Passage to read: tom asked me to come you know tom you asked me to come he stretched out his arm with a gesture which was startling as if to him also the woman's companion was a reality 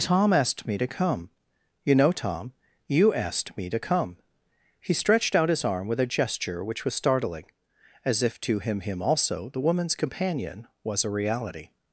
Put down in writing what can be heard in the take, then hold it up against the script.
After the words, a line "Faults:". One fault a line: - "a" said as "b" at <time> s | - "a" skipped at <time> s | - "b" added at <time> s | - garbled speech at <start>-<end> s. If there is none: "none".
tom asked me to come you know tom you asked me to come he stretched out his arm with a gesture which was startling as if to him him also the woman's companion was a reality
Faults:
- "him" added at 8.8 s